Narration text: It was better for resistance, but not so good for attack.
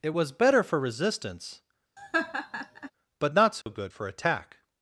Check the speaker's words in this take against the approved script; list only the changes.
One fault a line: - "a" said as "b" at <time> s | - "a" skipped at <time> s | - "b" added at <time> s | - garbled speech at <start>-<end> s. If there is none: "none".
none